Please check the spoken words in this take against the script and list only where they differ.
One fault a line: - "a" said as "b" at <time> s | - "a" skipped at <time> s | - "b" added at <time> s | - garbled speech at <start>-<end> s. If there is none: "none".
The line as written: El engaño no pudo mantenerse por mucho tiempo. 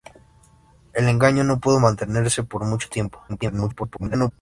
- garbled speech at 3.3-4.3 s